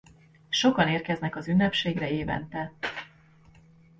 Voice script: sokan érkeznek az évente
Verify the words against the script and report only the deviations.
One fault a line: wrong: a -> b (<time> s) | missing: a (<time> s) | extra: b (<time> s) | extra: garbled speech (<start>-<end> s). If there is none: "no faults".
extra: ünnepségre (1.5 s)